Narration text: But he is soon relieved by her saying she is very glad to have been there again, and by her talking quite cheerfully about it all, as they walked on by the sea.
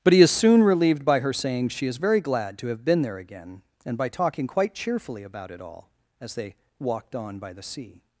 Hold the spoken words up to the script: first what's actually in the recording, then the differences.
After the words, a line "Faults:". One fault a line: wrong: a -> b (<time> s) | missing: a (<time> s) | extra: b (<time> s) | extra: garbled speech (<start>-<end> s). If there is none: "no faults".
But he is soon relieved by her saying she is very glad to have been there again, and by talking quite cheerfully about it all, as they walked on by the sea.
Faults:
missing: her (4.1 s)